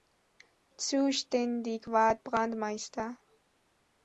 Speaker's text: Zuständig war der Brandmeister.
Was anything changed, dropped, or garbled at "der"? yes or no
yes